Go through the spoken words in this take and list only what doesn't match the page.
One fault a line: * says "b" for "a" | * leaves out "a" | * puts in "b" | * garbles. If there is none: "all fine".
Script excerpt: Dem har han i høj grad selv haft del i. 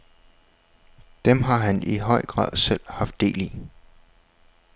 all fine